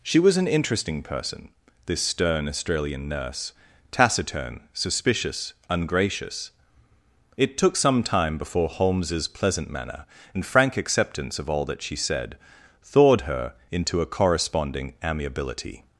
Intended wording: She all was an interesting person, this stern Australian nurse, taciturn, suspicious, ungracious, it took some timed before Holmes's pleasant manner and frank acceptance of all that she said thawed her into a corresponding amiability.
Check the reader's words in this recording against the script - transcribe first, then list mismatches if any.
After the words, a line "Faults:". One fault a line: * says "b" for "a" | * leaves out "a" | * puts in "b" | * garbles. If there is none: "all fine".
She was an interesting person, this stern Australian nurse, taciturn, suspicious, ungracious, it took some time before Holmes's pleasant manner and frank acceptance of all that she said thawed her into a corresponding amiability.
Faults:
* leaves out "all"
* says "time" for "timed"